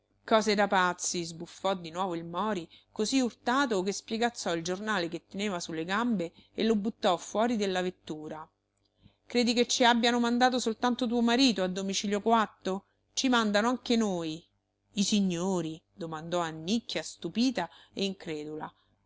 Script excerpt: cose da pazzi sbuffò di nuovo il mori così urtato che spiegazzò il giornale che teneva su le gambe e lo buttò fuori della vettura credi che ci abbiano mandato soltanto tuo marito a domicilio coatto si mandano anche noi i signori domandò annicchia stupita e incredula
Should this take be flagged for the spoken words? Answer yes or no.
yes